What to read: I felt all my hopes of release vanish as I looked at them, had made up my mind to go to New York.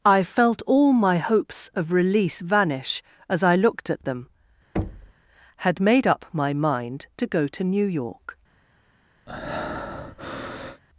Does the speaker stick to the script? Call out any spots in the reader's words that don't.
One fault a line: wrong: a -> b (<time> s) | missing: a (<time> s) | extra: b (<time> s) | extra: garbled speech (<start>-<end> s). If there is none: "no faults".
no faults